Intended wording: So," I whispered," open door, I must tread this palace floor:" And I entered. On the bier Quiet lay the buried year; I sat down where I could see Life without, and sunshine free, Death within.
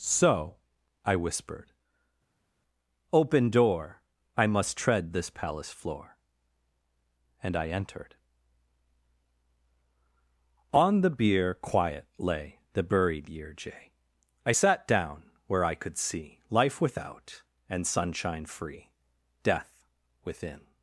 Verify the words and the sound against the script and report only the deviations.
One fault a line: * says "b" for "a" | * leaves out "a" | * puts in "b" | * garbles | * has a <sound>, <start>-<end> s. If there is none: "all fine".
* puts in "jay"